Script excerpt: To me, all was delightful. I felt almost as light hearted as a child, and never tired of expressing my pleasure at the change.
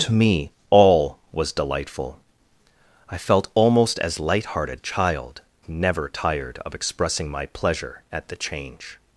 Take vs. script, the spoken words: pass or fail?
fail